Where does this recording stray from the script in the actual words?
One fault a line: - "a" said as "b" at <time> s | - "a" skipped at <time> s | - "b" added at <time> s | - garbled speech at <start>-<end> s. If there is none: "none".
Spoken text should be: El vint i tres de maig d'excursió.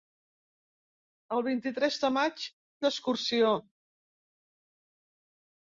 none